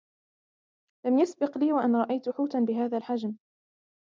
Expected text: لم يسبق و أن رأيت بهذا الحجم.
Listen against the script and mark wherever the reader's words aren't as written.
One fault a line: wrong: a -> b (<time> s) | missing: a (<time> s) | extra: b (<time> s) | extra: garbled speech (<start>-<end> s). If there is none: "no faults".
extra: لي (1.6 s)
extra: حوتا (2.3 s)